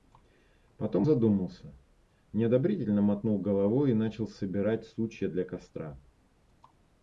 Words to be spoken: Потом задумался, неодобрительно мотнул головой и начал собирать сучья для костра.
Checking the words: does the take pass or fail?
pass